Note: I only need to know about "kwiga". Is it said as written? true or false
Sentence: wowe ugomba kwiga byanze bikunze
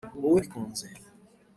false